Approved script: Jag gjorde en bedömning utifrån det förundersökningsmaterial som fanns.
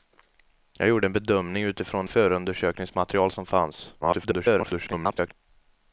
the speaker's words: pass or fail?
fail